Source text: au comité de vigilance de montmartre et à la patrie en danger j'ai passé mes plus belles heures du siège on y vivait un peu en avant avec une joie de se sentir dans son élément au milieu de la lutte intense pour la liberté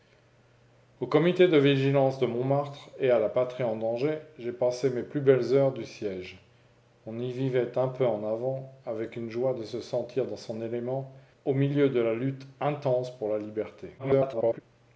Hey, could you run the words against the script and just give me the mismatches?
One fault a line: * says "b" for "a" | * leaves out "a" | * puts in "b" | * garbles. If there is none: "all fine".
* garbles